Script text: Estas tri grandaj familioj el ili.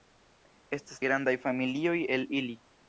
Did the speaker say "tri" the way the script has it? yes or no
no